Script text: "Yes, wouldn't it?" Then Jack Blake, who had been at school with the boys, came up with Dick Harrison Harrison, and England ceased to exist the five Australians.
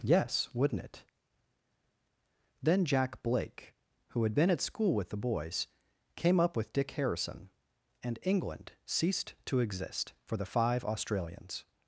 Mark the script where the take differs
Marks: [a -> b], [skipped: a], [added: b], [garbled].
"Yes, wouldn't it?" Then Jack Blake, who had been at school with the boys, came up with Dick Harrison [skipped: Harrison,] and England ceased to exist [added: for] the five Australians.